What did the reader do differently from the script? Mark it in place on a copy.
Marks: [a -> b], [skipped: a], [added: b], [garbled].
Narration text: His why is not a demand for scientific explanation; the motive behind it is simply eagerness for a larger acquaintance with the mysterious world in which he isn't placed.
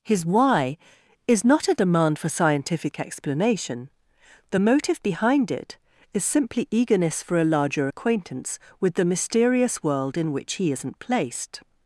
His why is not a demand for scientific explanation; the motive behind it is simply eagerness for a larger acquaintance with the mysterious world in which he isn't placed.